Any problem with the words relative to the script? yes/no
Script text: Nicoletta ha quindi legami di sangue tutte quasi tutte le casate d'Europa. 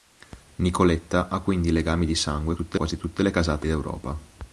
no